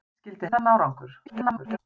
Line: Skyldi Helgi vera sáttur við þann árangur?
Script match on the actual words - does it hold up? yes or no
no